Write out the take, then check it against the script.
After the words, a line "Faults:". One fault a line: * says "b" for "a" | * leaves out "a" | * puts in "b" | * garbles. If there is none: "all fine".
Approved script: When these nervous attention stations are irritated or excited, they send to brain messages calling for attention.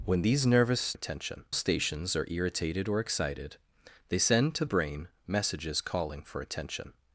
When these nervous attention stations are irritated or excited, they send to brain messages calling for attention.
Faults:
all fine